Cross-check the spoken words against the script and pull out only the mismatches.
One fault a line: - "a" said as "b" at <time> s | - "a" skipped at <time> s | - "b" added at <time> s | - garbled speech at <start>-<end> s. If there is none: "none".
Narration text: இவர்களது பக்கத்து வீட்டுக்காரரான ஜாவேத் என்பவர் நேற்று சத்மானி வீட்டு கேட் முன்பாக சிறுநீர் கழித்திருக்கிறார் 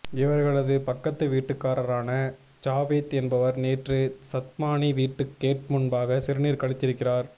none